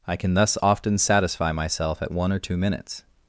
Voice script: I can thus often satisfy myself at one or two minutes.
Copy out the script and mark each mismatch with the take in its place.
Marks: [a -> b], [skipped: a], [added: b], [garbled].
I can thus often satisfy myself at one or two minutes.